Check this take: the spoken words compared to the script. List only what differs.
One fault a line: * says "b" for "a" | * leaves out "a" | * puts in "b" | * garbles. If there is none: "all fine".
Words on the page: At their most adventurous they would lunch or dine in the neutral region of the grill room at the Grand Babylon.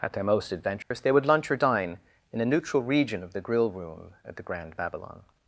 * says "a" for "the"